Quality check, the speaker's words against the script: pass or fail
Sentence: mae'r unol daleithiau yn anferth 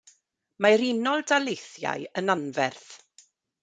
pass